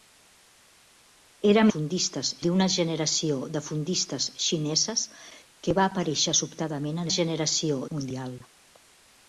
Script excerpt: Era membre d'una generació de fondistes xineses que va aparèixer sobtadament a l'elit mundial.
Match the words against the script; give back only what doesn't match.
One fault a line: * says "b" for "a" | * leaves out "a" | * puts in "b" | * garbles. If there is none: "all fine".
* says "fondistes" for "membre"
* says "generació" for "l'elit"